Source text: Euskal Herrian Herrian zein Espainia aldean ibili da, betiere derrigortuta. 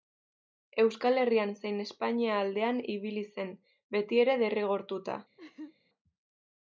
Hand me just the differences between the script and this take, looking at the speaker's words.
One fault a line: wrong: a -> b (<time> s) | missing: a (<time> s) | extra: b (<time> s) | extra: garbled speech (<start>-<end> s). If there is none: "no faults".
missing: Herrian (1.5 s)
wrong: da -> zen (3.4 s)